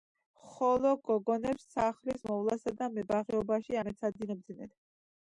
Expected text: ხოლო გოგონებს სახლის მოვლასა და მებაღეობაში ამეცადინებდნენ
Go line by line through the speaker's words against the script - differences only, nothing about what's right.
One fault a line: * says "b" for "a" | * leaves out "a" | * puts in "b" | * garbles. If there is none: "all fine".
all fine